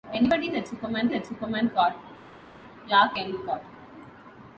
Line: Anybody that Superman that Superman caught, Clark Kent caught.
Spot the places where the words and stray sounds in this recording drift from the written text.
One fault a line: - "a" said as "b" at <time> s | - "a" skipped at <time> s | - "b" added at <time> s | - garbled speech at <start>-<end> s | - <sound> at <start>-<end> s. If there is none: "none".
none